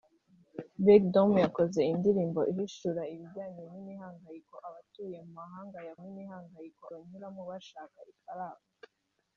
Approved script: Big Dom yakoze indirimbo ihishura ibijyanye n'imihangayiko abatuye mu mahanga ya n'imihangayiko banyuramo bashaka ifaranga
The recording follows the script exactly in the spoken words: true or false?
true